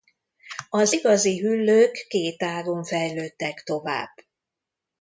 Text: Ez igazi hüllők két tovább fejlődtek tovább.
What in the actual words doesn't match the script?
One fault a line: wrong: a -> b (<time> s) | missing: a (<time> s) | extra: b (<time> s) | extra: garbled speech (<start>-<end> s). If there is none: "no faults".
wrong: Ez -> Az (0.7 s)
wrong: tovább -> ágon (2.4 s)